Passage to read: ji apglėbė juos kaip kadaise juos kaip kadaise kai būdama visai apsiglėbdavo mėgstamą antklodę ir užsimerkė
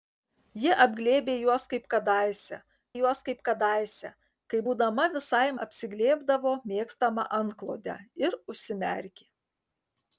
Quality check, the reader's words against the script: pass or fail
pass